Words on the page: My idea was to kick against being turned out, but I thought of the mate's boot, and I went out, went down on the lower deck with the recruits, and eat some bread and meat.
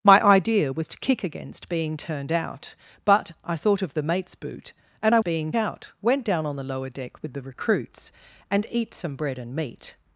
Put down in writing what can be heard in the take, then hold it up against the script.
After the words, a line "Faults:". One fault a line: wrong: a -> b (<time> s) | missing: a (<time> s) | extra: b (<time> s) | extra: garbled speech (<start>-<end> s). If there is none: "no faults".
My idea was to kick against being turned out, but I thought of the mate's boot, and I being out, went down on the lower deck with the recruits, and eat some bread and meat.
Faults:
wrong: went -> being (5.2 s)